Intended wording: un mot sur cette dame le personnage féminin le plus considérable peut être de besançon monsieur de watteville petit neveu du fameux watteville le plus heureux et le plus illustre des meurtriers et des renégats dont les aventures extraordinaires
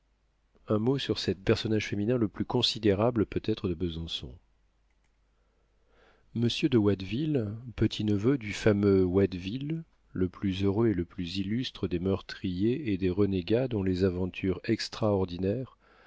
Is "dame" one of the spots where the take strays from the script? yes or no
yes